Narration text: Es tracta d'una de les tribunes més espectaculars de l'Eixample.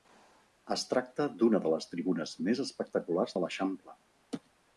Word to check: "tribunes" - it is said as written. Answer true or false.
true